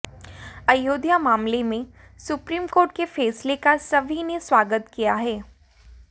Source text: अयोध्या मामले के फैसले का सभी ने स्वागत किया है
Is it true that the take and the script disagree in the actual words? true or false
true